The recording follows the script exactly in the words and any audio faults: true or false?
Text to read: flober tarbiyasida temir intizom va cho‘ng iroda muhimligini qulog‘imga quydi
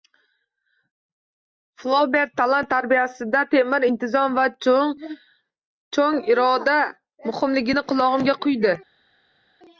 false